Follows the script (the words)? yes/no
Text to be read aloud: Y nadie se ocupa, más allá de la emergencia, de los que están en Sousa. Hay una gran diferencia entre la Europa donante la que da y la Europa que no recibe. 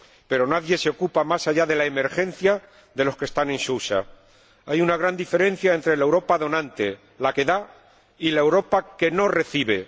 no